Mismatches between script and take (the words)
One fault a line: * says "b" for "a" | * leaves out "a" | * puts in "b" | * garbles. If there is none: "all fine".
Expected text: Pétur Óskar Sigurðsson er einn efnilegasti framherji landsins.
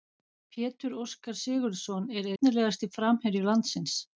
* leaves out "einn"